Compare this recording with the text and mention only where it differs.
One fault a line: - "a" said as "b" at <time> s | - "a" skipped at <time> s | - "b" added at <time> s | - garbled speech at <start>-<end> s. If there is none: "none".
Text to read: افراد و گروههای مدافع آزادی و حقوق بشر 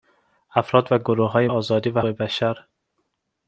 - "مدافع" skipped at 1.5 s
- "حقوق" skipped at 2.0 s